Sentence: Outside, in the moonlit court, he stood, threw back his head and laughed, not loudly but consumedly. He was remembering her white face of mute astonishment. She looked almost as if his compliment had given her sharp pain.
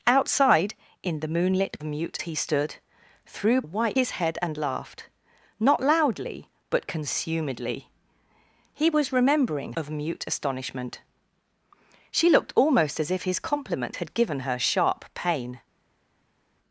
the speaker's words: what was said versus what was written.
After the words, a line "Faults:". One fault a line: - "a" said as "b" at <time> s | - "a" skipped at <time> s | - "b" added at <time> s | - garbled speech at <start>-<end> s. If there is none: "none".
Outside, in the moonlit mute, he stood, threw white his head and laughed, not loudly but consumedly. He was remembering of mute astonishment. She looked almost as if his compliment had given her sharp pain.
Faults:
- "court" said as "mute" at 1.8 s
- "back" said as "white" at 3.6 s
- "her white face" skipped at 9.7 s